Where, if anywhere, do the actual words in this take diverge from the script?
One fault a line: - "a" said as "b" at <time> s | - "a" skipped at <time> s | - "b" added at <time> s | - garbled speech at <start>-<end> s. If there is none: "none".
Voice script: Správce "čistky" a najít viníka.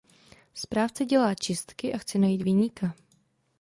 - "dělá" added at 1.1 s
- "chce" added at 2.0 s